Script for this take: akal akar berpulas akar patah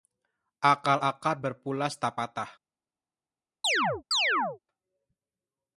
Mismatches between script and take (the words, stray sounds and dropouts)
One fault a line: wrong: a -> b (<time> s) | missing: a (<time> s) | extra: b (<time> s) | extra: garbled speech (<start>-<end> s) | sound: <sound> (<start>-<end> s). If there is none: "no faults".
wrong: akar -> tak (2.0 s)
sound: chirp (3.6-4.6 s)